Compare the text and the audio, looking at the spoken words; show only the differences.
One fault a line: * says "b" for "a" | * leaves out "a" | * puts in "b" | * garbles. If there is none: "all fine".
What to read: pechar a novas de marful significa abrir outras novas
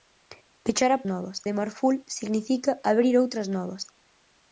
all fine